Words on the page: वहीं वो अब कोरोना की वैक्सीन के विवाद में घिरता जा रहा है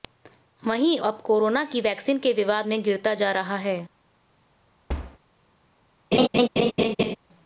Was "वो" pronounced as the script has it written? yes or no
no